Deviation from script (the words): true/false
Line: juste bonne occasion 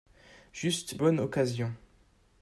false